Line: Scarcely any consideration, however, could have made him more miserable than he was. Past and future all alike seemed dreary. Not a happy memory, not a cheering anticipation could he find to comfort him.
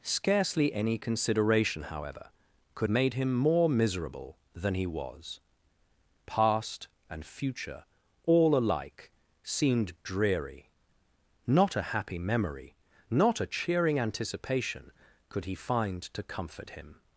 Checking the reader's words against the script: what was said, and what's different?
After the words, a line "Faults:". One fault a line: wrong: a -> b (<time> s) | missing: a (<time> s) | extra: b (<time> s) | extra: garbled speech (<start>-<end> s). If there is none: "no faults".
Scarcely any consideration, however, could made him more miserable than he was. Past and future all alike seemed dreary. Not a happy memory, not a cheering anticipation could he find to comfort him.
Faults:
missing: have (2.9 s)